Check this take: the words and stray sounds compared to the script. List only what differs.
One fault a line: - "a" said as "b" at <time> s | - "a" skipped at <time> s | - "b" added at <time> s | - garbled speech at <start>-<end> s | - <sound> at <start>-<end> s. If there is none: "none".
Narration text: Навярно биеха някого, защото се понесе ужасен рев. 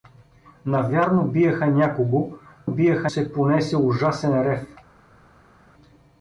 - "защото" said as "биеха" at 2.7 s